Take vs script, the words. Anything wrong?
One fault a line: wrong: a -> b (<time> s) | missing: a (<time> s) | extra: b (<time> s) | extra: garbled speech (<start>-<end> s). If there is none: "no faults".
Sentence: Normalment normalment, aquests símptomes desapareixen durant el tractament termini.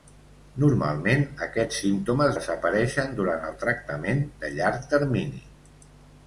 missing: normalment (1.2 s)
extra: de llarg (4.4 s)